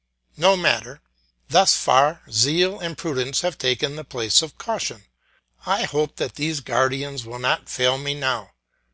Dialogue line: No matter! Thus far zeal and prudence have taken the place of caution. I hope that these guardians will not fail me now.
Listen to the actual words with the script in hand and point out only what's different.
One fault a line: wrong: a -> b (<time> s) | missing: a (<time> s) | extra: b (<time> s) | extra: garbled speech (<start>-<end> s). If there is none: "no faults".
no faults